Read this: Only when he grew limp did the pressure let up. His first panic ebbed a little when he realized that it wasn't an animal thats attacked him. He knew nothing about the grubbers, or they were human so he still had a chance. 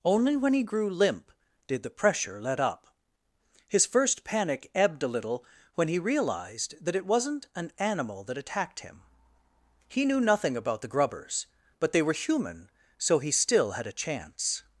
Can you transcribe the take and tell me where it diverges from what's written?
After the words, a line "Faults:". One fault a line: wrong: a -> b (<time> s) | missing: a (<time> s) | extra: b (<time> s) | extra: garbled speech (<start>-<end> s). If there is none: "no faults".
Only when he grew limp did the pressure let up. His first panic ebbed a little when he realized that it wasn't an animal that attacked him. He knew nothing about the grubbers, but they were human so he still had a chance.
Faults:
wrong: thats -> that (8.2 s)
wrong: or -> but (11.8 s)